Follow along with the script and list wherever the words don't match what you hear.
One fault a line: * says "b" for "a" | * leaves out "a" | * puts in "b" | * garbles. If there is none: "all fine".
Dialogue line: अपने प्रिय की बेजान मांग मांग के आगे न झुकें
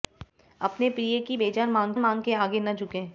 all fine